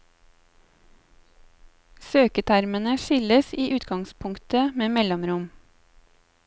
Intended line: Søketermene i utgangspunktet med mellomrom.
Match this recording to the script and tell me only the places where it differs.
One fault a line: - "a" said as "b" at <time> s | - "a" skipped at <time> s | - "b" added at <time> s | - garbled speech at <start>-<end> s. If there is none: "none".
- "skilles" added at 3.0 s